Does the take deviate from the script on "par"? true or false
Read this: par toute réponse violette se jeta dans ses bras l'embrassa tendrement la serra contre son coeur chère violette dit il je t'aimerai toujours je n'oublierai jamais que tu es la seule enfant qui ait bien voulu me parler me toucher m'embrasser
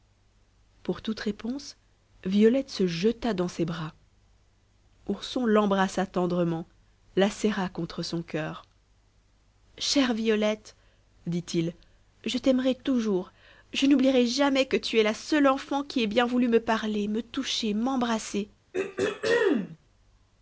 true